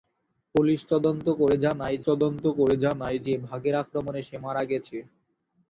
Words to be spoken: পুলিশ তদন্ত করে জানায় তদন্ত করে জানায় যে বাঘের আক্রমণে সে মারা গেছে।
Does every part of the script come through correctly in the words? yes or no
yes